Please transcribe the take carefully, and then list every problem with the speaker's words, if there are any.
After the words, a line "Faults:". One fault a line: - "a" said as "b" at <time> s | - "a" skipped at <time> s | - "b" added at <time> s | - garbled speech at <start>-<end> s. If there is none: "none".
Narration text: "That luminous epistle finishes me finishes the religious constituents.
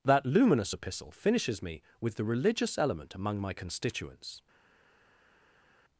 "That luminous epistle finishes me with the religious element among my constituents.
Faults:
- "finishes" said as "with" at 2.0 s
- "element among my" added at 2.8 s